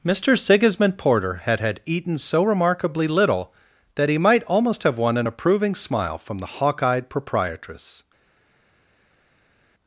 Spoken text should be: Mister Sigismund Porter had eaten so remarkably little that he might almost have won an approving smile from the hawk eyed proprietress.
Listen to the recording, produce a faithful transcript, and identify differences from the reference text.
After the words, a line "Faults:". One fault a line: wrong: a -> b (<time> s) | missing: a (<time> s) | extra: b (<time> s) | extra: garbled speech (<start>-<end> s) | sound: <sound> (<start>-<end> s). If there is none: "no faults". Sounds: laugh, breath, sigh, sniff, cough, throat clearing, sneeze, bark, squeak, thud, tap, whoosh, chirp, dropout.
Mister Sigismund Porter had had eaten so remarkably little that he might almost have won an approving smile from the hawk eyed proprietress.
Faults:
extra: had (1.6 s)